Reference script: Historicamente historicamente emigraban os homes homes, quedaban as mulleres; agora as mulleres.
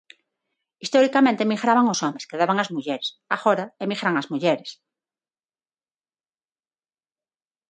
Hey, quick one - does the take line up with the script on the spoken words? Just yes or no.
no